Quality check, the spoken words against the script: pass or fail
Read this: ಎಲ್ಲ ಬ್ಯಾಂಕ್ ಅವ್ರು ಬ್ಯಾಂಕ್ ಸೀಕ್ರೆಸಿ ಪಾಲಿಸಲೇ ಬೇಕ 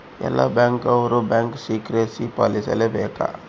pass